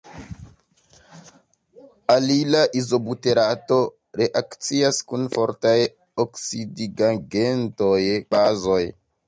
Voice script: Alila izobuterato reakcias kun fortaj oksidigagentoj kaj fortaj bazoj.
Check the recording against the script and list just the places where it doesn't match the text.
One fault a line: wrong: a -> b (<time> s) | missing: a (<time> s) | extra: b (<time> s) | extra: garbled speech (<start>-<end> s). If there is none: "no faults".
missing: kaj fortaj (8.0 s)